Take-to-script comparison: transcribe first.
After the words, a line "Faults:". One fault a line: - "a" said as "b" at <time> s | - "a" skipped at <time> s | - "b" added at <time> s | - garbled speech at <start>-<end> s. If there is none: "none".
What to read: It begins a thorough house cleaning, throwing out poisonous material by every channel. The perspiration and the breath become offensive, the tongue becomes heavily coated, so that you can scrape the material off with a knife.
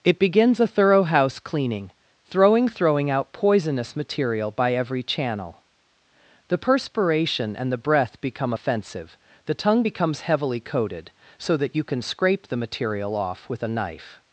It begins a thorough house cleaning, throwing throwing out poisonous material by every channel. The perspiration and the breath become offensive, the tongue becomes heavily coated, so that you can scrape the material off with a knife.
Faults:
- "throwing" added at 2.7 s